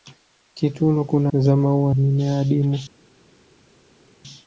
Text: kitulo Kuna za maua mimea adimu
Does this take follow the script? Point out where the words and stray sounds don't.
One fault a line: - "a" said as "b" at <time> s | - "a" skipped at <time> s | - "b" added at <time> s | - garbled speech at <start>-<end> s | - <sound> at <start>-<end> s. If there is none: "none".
none